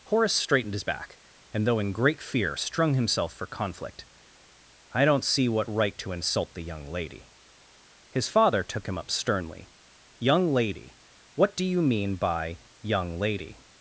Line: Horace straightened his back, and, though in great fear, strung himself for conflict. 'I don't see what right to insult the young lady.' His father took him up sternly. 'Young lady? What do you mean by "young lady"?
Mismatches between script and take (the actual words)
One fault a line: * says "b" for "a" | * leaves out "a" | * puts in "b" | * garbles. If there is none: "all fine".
all fine